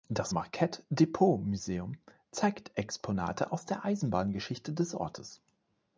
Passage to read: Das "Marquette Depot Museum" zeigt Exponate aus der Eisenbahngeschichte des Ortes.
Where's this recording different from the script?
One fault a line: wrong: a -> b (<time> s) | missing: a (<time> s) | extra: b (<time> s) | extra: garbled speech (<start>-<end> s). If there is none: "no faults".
no faults